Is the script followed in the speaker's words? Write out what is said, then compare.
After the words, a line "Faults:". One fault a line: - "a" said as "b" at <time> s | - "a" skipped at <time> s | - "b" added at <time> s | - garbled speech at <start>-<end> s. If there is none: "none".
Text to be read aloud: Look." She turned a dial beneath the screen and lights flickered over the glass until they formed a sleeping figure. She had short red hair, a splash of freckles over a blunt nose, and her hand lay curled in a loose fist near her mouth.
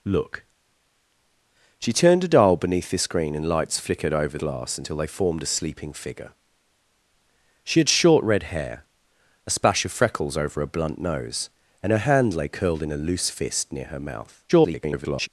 Look." She turned a dial beneath the screen and lights flickered over glass until they formed a sleeping figure. She had short red hair, a splash of freckles over a blunt nose, and her hand lay curled in a loose fist near her mouth. [garbled]
Faults:
- "the" skipped at 4.4 s
- garbled speech at 14.5-15.3 s